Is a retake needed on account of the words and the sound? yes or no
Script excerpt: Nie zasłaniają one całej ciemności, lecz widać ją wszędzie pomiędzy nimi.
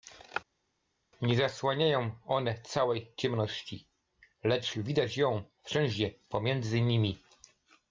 no